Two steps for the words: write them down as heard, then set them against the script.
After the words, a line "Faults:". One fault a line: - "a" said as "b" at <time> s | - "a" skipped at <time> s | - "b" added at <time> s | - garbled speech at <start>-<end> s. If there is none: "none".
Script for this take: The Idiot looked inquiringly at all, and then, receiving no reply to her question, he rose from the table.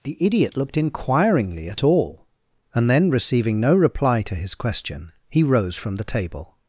The Idiot looked inquiringly at all, and then, receiving no reply to his question, he rose from the table.
Faults:
- "her" said as "his" at 4.4 s